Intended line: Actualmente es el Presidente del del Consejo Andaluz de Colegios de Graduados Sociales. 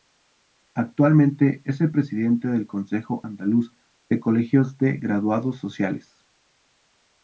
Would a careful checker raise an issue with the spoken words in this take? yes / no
yes